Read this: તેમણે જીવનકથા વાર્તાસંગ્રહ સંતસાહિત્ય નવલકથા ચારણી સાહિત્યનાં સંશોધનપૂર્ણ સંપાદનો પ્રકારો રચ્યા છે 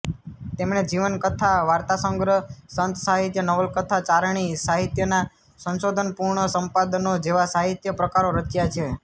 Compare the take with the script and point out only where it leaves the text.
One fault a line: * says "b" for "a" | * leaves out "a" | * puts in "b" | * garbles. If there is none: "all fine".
* puts in "જેવા સાહિત્ય"